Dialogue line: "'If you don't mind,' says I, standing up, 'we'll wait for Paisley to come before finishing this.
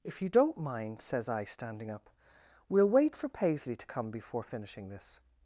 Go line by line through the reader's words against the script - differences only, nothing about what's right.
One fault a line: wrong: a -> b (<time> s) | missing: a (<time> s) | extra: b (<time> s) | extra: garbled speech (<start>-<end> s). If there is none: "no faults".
no faults